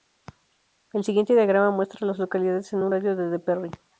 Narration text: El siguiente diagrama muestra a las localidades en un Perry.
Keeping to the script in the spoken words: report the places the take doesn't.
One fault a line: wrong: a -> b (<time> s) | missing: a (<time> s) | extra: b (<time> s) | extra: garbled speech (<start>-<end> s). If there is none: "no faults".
extra: radio de de (2.9 s)